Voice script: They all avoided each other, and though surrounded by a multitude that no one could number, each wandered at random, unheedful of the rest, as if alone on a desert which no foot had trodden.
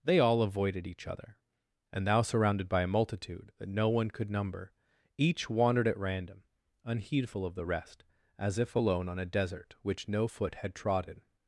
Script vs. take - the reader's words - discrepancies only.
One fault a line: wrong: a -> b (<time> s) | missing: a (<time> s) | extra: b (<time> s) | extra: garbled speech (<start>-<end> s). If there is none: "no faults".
wrong: though -> thou (2.1 s)